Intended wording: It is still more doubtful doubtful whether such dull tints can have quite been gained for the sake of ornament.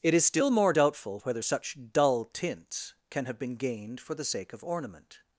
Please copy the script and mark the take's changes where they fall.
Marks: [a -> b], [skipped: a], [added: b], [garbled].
It is still more doubtful [skipped: doubtful] whether such dull tints can have [skipped: quite] been gained for the sake of ornament.